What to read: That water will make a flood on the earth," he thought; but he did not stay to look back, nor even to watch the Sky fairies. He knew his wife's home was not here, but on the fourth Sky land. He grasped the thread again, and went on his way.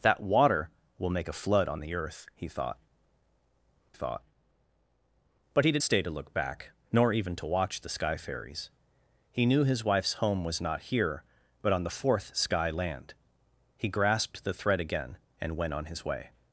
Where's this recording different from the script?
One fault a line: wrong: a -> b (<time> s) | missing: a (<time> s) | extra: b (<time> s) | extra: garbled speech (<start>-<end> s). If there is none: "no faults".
extra: thought (3.9 s)
missing: not (5.8 s)